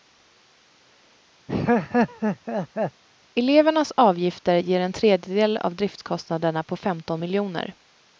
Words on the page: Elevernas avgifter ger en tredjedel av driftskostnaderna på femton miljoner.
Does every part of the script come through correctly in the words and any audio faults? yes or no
no